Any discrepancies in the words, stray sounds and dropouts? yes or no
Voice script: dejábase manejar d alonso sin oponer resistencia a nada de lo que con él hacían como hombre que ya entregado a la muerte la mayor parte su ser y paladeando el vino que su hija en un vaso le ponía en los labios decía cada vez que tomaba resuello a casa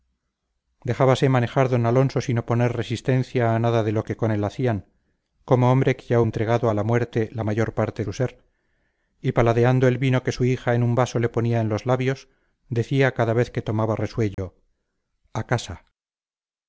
yes